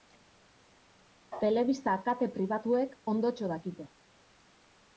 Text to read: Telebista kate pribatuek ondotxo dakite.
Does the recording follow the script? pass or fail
pass